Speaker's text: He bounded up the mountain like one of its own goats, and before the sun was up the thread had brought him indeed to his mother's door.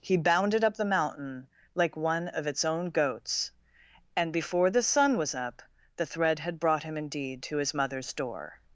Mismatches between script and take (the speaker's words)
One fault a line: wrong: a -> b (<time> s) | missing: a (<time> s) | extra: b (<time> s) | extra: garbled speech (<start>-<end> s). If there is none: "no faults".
no faults